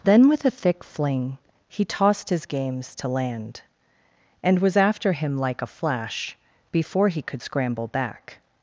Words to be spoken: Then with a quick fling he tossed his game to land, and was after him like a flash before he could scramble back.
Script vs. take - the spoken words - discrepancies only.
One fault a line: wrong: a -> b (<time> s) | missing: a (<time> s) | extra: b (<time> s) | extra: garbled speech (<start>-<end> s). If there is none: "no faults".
wrong: quick -> thick (0.5 s)
wrong: game -> games (2.5 s)